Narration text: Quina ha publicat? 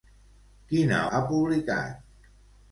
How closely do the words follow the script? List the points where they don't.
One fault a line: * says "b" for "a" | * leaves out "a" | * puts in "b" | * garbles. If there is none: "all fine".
all fine